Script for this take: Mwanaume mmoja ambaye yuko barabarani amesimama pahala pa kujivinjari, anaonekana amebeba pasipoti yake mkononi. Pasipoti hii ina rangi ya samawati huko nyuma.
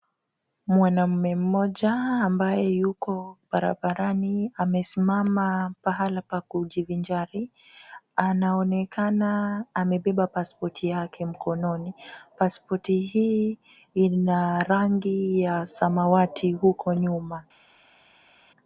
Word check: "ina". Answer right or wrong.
right